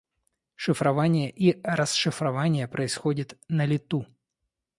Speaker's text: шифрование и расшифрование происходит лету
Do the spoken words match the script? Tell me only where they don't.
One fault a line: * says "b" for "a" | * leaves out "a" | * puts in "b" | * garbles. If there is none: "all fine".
* puts in "на"